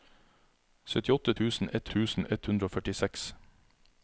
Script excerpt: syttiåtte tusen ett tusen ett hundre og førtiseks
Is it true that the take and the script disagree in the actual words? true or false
false